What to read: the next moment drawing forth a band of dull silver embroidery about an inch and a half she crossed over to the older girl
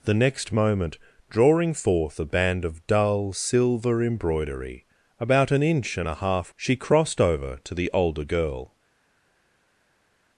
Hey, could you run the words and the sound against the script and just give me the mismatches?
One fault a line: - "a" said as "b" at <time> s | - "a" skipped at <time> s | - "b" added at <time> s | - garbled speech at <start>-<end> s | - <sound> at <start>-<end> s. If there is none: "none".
none